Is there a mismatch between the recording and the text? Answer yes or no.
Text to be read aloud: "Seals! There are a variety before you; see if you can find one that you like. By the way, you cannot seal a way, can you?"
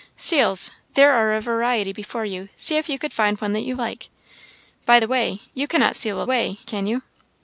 no